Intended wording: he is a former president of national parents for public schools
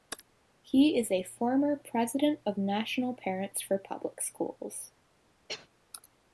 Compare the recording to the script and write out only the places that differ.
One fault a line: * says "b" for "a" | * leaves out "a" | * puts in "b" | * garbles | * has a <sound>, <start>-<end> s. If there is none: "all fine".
* has a cough, 5.5-5.7 s